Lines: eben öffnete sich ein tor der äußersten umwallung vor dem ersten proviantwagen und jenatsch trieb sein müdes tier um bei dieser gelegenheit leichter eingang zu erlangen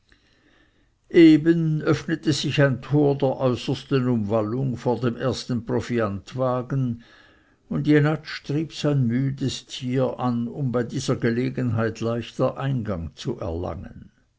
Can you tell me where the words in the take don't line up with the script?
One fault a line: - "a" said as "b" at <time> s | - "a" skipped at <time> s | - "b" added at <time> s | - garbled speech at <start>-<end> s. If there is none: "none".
- "an" added at 10.2 s